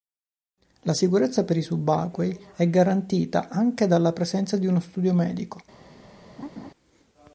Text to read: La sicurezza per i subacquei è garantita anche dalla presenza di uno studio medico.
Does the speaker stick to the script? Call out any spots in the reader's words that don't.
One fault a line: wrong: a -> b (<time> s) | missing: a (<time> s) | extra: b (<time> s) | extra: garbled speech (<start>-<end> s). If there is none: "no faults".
no faults